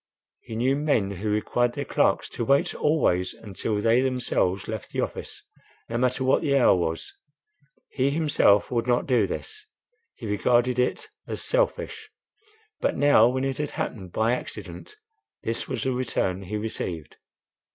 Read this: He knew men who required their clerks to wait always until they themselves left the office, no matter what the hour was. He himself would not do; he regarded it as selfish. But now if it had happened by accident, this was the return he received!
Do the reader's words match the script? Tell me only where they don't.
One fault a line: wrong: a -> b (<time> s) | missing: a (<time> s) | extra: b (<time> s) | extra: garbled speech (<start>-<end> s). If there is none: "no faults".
extra: this (9.3 s)
wrong: if -> when (13.3 s)